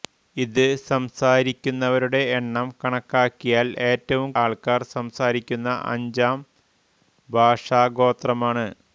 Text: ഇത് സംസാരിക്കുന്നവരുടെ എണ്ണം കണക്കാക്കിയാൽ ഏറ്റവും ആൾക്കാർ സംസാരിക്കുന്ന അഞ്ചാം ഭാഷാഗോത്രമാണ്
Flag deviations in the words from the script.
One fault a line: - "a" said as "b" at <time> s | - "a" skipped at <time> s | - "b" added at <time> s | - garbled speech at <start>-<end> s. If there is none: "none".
none